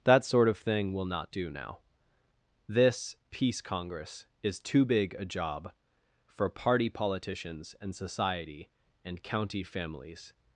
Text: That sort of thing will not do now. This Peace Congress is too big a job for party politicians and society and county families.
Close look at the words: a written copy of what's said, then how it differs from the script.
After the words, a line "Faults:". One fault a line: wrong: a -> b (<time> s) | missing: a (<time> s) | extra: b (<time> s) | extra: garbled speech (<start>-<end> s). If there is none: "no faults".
That sort of thing will not do now. This Peace Congress is too big a job for party politicians and society and county families.
Faults:
no faults